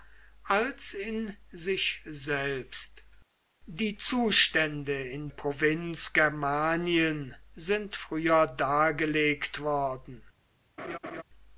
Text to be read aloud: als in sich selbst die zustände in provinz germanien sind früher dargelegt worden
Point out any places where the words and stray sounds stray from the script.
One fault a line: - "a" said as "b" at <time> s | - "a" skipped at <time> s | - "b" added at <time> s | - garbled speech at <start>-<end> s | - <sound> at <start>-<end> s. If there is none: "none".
- laugh at 10.8-11.2 s